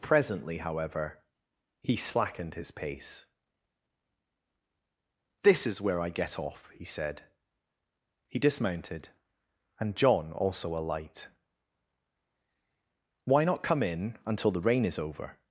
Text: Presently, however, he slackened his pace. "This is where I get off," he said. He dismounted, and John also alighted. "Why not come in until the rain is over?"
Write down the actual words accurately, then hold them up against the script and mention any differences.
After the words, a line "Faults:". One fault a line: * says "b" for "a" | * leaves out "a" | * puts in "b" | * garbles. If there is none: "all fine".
Presently, however, he slackened his pace. "This is where I get off," he said. He dismounted, and John also alight. "Why not come in until the rain is over?"
Faults:
* says "alight" for "alighted"